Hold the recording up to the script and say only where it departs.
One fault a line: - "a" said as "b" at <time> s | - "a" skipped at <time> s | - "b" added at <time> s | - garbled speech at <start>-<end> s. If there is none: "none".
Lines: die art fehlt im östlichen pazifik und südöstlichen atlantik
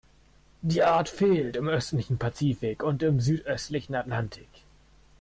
- "im" added at 3.0 s